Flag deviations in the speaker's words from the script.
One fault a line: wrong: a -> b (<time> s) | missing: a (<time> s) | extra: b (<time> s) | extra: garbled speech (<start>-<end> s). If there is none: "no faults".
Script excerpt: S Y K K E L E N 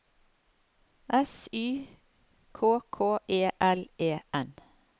no faults